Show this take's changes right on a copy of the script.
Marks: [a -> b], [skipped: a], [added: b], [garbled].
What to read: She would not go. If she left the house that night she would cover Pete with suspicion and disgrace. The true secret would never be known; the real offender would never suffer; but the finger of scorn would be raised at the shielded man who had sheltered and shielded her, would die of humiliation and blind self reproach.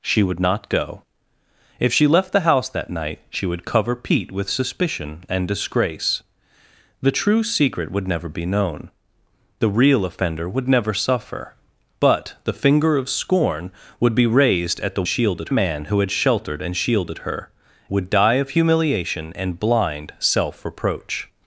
She would not go. If she left the house that night she would cover Pete with suspicion and disgrace. The true secret would never be known; the real offender would never suffer; but the finger of scorn would be raised at the shielded man who had sheltered and shielded her, would die of humiliation and blind self reproach.